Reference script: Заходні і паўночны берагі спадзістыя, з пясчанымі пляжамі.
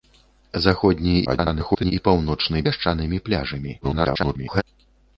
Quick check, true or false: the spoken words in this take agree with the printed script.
false